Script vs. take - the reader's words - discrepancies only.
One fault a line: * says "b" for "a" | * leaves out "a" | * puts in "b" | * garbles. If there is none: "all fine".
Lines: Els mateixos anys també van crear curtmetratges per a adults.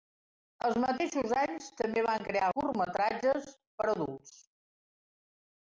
all fine